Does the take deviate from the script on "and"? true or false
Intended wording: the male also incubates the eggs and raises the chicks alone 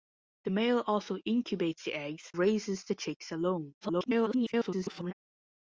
true